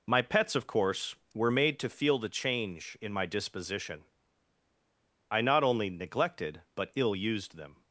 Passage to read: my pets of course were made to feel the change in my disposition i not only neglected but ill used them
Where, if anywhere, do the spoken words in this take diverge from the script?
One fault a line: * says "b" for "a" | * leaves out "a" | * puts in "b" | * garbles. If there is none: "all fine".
all fine